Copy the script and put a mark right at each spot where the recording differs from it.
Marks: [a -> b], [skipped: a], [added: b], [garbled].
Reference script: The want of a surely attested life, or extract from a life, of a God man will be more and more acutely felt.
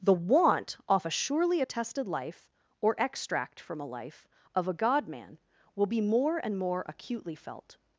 The want [of -> off] a surely attested life, or extract from a life, of a God man will be more and more acutely felt.